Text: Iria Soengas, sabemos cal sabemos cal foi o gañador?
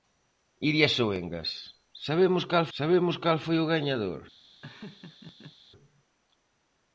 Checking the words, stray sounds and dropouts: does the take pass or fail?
fail